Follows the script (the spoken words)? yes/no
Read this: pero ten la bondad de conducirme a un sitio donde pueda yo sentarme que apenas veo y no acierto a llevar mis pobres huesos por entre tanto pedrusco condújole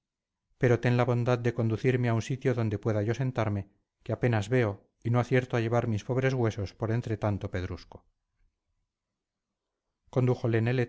yes